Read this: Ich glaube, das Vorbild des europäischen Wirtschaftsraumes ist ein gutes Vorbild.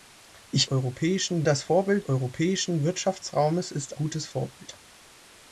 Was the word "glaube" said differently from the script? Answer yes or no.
yes